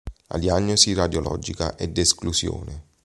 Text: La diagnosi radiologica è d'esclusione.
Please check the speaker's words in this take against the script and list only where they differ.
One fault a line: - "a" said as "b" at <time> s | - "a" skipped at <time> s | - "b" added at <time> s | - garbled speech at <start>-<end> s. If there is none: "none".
none